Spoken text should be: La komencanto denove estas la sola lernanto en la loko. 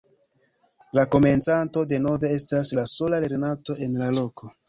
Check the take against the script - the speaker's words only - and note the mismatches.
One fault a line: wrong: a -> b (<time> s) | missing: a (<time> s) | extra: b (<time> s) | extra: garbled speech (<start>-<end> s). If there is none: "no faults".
no faults